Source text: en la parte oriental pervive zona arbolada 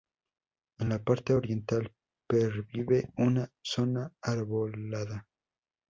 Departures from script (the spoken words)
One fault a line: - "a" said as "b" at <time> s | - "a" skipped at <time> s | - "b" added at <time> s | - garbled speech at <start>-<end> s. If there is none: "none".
- "una" added at 3.2 s